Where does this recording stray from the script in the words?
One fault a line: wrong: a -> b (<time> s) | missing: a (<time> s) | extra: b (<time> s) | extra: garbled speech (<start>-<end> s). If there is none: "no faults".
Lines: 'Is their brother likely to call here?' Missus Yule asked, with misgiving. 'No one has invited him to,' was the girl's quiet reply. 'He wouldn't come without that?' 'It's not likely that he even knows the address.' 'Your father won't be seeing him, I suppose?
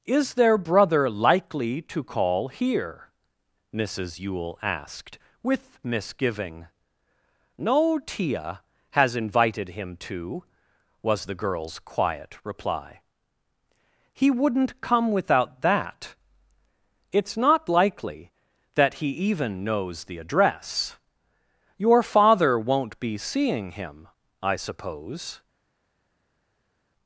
wrong: one -> tia (8.0 s)